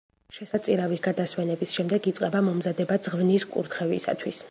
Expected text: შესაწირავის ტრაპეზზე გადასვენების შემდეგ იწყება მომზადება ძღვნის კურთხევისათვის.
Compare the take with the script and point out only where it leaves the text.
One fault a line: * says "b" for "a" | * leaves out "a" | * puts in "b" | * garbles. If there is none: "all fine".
* leaves out "ტრაპეზზე"